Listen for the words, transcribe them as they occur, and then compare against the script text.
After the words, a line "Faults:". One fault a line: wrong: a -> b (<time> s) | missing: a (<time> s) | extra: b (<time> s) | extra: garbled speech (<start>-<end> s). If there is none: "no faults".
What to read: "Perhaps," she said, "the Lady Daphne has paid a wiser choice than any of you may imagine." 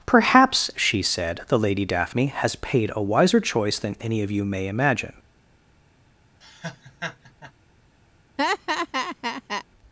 "Perhaps," she said, "the Lady Daphne has paid a wiser choice than any of you may imagine."
Faults:
no faults